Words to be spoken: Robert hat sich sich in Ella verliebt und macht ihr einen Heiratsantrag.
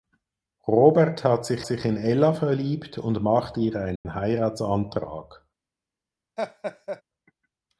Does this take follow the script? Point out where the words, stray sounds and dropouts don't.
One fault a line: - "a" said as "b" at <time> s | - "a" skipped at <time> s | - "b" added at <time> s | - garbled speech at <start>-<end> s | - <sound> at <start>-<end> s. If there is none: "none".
- dropout at 4.0-4.1 s
- laugh at 6.4-7.0 s